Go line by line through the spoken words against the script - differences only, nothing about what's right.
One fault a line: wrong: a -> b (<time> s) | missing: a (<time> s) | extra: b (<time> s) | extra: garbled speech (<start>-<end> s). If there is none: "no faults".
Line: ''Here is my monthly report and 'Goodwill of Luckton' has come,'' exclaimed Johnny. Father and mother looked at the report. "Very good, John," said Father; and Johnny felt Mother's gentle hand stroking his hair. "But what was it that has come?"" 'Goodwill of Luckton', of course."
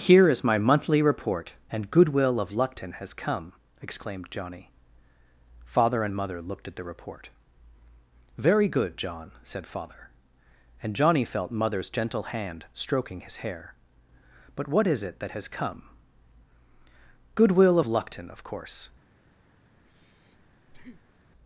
wrong: was -> is (14.9 s)